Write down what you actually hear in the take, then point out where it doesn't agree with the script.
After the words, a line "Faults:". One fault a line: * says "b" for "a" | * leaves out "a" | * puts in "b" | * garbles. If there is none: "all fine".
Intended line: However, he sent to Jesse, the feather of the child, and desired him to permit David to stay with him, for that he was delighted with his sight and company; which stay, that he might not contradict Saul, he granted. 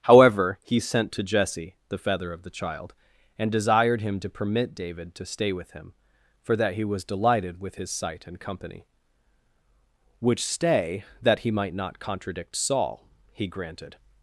However, he sent to Jesse, the feather of the child, and desired him to permit David to stay with him, for that he was delighted with his sight and company; which stay, that he might not contradict Saul, he granted.
Faults:
all fine